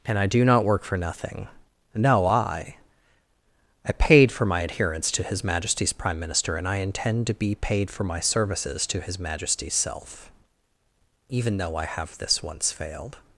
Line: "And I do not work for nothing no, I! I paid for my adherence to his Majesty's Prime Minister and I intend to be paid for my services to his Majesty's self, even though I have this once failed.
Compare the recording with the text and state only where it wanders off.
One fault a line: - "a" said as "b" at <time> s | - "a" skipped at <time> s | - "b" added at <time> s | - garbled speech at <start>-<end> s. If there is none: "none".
none